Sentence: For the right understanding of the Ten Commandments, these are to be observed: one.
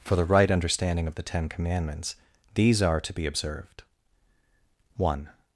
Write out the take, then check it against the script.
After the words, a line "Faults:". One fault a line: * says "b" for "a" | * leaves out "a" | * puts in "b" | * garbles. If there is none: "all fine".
For the right understanding of the Ten Commandments, these are to be observed: one.
Faults:
all fine